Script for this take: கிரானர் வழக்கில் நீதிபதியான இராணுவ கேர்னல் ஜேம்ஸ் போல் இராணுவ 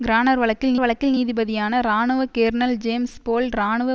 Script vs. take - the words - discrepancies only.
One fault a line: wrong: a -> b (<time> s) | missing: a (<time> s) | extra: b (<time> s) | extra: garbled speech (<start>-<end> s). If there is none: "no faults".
extra: வழக்கில் (0.8 s)